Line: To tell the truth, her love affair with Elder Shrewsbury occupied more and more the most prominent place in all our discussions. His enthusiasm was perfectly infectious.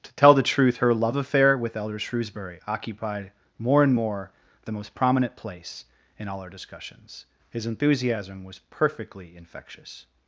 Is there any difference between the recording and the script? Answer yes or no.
no